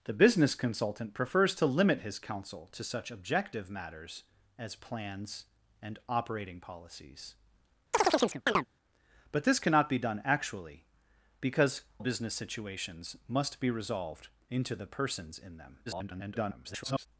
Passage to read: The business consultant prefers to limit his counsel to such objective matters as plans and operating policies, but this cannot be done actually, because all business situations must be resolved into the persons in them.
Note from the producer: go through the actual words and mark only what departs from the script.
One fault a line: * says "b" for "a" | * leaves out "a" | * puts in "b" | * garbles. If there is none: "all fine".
* leaves out "all"
* garbles